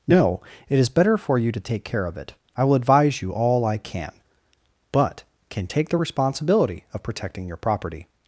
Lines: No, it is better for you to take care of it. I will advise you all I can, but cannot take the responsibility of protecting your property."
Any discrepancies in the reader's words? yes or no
yes